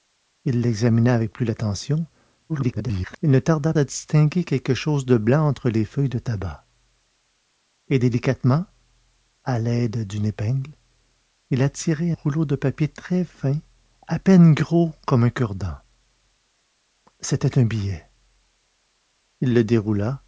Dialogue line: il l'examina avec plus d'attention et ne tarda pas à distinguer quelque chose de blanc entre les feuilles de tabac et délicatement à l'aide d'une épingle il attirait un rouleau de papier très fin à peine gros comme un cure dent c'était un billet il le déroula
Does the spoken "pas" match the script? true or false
false